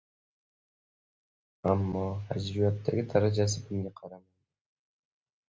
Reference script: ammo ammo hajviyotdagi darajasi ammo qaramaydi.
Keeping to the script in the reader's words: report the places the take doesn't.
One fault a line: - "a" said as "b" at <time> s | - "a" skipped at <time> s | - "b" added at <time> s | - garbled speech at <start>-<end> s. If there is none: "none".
- "ammo" skipped at 2.0 s
- "ammo" said as "bunga" at 3.7 s